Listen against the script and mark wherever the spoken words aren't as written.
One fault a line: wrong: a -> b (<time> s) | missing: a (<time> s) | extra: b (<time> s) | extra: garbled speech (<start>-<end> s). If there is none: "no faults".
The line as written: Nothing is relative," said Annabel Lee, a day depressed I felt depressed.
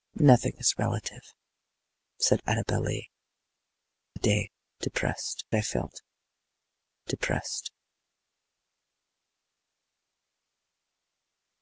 no faults